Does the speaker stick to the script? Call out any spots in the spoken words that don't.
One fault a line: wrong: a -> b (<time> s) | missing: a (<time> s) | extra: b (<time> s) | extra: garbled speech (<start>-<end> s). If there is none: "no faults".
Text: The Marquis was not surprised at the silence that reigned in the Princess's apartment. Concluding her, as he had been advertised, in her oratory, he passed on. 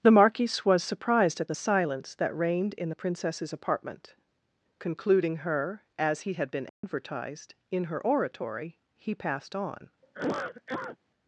missing: not (0.8 s)